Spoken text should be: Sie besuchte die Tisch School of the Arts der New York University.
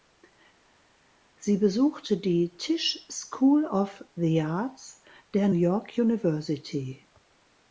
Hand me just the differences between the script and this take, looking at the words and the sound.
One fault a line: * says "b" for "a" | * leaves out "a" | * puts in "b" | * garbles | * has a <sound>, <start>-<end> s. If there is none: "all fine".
* leaves out "New"